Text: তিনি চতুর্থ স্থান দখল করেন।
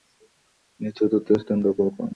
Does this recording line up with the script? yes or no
yes